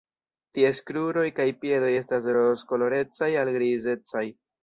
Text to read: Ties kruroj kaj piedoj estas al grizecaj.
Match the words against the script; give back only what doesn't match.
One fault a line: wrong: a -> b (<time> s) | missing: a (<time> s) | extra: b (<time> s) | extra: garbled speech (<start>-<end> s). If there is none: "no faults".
extra: rozkolorecaj (2.4 s)